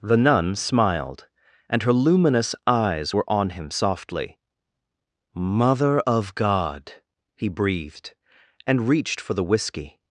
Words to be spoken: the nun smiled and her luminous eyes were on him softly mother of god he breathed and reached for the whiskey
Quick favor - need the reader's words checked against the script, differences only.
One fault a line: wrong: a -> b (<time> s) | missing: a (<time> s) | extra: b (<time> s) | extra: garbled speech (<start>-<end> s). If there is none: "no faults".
no faults